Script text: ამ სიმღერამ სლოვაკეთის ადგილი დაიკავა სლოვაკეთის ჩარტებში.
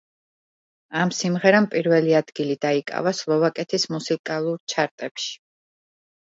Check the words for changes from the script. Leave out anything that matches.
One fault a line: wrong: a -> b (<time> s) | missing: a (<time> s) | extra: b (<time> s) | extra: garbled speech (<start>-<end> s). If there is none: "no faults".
wrong: სლოვაკეთის -> პირველი (1.8 s)
extra: მუსიკალურ (4.0 s)